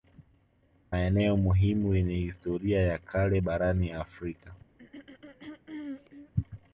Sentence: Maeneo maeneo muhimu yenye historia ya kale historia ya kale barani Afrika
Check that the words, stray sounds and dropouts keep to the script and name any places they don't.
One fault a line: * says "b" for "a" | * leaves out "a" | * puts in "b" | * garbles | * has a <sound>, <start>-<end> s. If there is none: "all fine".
* leaves out "maeneo"
* leaves out "historia ya kale"
* has a throat clearing, 4.8-6.3 s